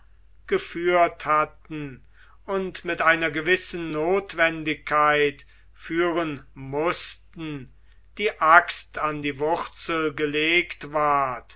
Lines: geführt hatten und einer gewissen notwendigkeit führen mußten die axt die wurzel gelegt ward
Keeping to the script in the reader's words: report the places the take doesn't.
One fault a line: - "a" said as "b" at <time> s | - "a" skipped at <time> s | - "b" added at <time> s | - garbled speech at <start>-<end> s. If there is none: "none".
- "mit" added at 2.9 s
- "an" added at 9.0 s